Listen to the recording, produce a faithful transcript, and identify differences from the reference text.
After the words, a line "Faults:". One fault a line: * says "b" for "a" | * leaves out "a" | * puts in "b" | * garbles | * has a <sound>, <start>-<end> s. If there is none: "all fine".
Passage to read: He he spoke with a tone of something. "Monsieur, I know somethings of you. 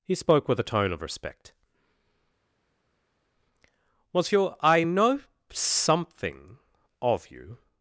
He spoke with a tone of respect. "Monsieur, I know something of you.
Faults:
* leaves out "he"
* says "respect" for "something"
* says "something" for "somethings"